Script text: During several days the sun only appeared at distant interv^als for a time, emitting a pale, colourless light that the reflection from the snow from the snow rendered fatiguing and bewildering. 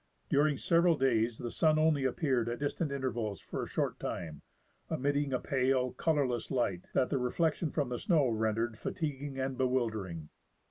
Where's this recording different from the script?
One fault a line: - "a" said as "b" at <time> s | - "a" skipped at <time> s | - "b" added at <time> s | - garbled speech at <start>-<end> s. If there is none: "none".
- "short" added at 3.7 s
- "from the snow" skipped at 8.3 s